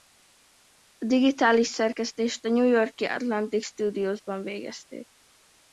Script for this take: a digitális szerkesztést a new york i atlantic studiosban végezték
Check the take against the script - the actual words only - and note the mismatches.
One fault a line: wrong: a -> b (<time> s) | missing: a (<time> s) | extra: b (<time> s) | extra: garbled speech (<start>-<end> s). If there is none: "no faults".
no faults